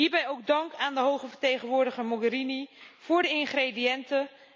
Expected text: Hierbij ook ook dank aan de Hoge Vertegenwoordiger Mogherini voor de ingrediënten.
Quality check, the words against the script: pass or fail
fail